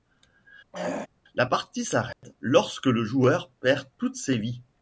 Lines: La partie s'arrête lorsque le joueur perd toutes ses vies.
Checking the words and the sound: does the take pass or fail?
fail